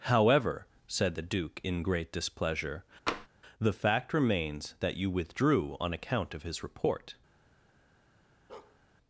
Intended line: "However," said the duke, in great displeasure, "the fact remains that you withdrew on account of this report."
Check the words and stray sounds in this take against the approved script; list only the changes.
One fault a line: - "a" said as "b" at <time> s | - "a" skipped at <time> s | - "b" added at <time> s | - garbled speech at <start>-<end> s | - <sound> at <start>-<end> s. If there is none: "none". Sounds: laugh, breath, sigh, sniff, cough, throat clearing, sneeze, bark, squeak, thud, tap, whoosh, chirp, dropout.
- tap at 3.1-3.3 s
- "this" said as "his" at 6.4 s
- bark at 8.5-8.8 s